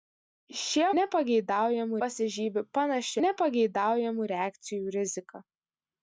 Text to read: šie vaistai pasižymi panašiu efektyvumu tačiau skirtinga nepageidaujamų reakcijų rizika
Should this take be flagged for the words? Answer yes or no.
yes